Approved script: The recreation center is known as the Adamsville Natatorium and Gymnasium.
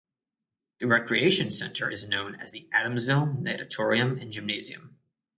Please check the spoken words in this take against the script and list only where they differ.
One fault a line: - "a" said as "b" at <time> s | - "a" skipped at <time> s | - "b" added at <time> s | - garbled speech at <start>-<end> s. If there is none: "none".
none